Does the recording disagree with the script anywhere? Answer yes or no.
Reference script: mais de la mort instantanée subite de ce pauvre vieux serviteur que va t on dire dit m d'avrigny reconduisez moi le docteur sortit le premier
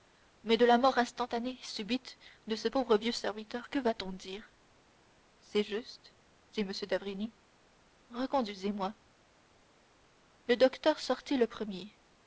yes